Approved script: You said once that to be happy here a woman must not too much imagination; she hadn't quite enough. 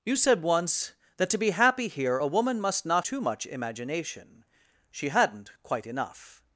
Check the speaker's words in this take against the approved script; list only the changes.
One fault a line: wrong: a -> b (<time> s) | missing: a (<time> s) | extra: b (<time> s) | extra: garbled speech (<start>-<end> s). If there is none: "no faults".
no faults